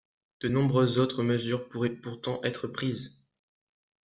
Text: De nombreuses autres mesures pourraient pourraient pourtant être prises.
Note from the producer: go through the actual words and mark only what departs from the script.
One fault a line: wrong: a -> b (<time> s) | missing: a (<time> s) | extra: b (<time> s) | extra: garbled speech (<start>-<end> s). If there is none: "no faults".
missing: pourraient (1.9 s)